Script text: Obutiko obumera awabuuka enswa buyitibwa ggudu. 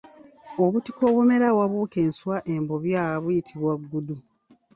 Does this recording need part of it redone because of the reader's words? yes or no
yes